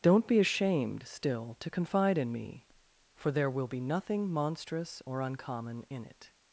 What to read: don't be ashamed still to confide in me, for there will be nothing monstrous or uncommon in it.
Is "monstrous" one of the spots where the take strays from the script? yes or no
no